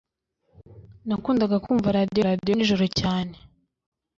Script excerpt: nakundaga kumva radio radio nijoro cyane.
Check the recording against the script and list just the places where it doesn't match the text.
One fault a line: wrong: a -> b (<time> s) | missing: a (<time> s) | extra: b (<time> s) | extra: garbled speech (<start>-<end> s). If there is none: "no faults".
no faults